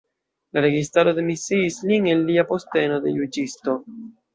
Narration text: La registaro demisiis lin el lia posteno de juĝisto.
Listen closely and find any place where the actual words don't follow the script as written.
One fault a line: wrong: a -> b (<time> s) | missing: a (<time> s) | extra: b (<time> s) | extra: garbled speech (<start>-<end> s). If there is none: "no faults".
no faults